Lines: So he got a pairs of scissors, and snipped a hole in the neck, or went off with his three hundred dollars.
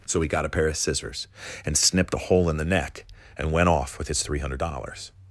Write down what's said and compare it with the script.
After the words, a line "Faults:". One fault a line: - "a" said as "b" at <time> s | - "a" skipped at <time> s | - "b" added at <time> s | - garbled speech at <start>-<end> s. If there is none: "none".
So he got a pair of scissors, and snipped a hole in the neck, and went off with his three hundred dollars.
Faults:
- "pairs" said as "pair" at 0.5 s
- "or" said as "and" at 3.4 s